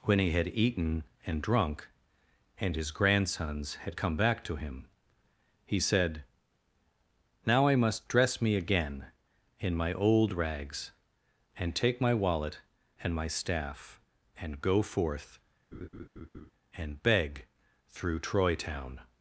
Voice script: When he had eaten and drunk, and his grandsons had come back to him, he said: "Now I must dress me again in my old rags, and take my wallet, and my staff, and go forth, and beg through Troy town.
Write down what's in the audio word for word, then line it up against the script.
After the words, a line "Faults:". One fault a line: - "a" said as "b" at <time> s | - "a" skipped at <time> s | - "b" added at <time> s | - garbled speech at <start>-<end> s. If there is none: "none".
When he had eaten and drunk, and his grandsons had come back to him, he said: "Now I must dress me again in my old rags, and take my wallet, and my staff, and go forth, and beg through Troy town.
Faults:
none